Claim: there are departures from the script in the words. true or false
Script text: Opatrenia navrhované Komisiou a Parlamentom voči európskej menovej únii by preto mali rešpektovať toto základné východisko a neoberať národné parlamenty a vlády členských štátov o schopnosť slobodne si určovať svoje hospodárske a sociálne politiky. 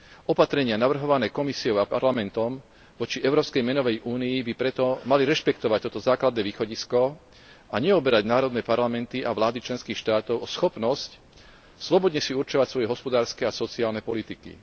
false